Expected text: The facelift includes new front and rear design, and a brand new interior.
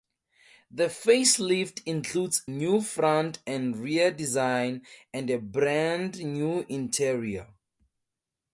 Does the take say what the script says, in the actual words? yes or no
yes